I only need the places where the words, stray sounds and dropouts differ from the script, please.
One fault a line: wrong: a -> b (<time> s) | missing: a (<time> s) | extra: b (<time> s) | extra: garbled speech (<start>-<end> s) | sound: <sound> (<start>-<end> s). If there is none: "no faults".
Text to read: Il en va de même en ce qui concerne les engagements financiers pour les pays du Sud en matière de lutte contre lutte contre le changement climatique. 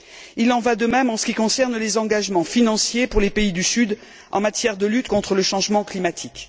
missing: lutte contre (5.3 s)